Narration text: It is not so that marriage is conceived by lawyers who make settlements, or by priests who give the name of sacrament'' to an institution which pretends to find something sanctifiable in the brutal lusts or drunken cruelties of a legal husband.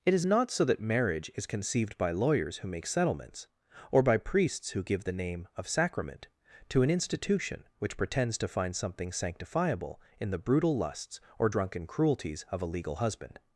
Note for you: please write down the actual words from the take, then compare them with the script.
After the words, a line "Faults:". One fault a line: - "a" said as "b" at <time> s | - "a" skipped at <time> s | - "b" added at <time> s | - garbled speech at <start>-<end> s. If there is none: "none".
It is not so that marriage is conceived by lawyers who make settlements, or by priests who give the name of sacrament'' to an institution which pretends to find something sanctifiable in the brutal lusts or drunken cruelties of a legal husband.
Faults:
none